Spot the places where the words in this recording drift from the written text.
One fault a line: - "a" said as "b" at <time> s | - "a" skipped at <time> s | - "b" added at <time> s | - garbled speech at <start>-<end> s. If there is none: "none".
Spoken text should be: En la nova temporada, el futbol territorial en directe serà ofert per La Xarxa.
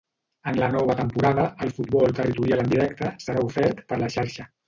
none